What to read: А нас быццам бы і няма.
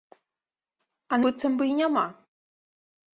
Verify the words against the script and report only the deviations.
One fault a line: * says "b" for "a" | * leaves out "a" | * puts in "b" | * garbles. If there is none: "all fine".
* leaves out "нас"